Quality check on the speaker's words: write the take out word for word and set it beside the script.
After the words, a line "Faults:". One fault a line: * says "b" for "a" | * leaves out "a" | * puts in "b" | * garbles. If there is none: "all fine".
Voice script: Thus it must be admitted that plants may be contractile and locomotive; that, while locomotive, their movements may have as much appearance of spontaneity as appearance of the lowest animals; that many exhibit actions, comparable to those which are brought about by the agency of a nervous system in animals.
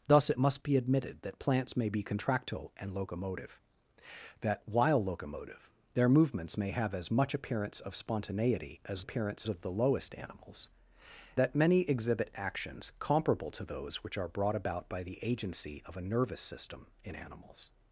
Thus it must be admitted that plants may be contractile and locomotive; that, while locomotive, their movements may have as much appearance of spontaneity as appearance of the lowest animals; that many exhibit actions, comparable to those which are brought about by the agency of a nervous system in animals.
Faults:
all fine